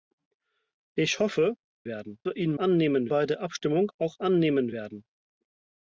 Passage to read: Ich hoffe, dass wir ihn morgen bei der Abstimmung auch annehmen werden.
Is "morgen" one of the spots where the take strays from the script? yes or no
yes